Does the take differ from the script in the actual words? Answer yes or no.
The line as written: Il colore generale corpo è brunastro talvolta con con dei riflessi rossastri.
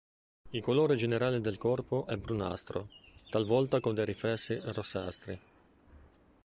yes